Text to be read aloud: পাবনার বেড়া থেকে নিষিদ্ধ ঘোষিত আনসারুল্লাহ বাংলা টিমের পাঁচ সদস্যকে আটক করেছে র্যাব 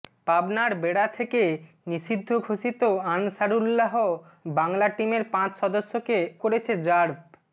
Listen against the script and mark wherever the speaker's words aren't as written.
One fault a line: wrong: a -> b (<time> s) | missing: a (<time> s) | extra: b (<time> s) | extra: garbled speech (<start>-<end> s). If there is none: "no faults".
missing: আটক (6.2 s)